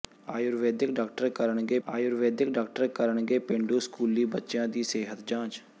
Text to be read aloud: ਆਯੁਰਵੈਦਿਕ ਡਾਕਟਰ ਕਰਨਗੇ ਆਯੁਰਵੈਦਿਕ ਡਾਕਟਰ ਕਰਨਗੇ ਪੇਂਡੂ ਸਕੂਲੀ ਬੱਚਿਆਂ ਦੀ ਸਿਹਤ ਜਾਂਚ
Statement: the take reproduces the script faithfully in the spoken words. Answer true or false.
true